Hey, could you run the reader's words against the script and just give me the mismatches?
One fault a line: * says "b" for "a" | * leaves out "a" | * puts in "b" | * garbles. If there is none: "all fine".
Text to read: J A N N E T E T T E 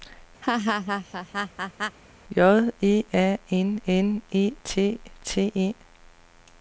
* puts in "E"
* leaves out "E T"